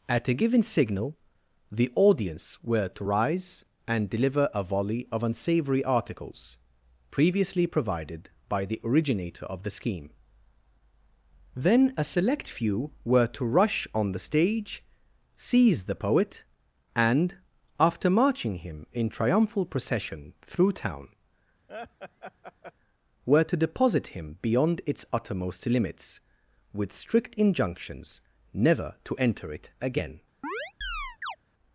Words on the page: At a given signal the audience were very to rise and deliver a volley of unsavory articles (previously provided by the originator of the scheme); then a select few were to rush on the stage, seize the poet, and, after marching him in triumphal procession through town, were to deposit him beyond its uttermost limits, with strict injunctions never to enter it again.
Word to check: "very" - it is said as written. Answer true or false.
false